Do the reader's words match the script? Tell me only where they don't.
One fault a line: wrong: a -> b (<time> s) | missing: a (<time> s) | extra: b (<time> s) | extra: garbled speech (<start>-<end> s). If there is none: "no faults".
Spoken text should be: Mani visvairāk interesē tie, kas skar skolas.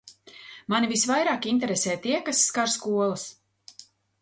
no faults